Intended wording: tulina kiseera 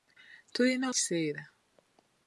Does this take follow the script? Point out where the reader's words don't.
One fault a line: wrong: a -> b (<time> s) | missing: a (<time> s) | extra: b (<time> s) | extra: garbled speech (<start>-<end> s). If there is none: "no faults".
no faults